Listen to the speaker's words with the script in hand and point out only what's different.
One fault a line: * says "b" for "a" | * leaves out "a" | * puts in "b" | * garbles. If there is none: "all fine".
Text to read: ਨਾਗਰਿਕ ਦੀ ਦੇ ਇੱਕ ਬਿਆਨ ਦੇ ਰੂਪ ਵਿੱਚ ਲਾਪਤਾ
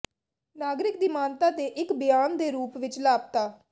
* puts in "ਮਾਨਤਾ"